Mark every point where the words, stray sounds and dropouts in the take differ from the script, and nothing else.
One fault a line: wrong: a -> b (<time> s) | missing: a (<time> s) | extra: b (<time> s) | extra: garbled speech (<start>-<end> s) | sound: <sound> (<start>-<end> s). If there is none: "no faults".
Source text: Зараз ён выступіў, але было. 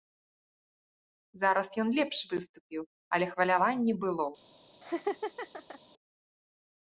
extra: лепш (2.0 s)
extra: хваляванне (3.3 s)
sound: laugh (4.8-5.8 s)